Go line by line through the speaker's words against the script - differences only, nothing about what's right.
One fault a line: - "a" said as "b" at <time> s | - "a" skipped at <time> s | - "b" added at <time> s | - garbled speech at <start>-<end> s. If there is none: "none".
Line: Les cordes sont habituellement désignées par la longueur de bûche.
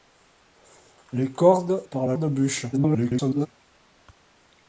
- "sont habituellement désignées" skipped at 1.9 s
- "longueur" skipped at 2.2 s
- garbled speech at 2.7-3.5 s